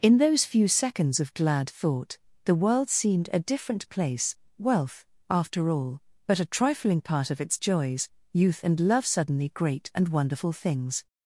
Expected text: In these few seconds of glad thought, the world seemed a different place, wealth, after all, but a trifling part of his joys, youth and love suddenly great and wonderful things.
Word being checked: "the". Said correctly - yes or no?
yes